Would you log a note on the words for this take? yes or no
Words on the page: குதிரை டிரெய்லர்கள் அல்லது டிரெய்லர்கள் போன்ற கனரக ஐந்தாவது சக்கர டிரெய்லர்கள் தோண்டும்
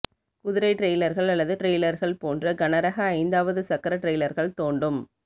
no